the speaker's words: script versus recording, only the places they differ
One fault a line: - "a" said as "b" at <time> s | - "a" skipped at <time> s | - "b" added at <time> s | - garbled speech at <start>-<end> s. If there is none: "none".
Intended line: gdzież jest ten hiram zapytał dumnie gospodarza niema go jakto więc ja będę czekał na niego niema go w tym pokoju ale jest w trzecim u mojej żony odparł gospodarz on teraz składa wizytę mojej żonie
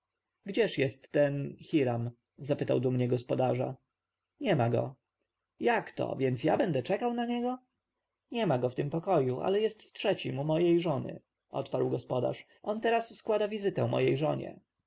none